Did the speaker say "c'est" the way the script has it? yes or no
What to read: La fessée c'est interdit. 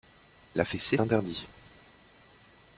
no